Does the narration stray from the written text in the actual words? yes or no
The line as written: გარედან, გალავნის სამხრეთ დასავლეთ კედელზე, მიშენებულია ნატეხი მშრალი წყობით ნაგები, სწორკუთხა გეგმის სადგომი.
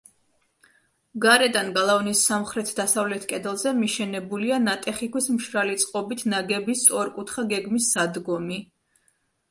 yes